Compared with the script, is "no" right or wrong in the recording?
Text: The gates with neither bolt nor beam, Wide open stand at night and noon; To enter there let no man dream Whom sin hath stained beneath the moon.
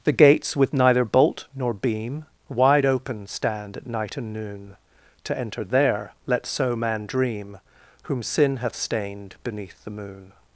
wrong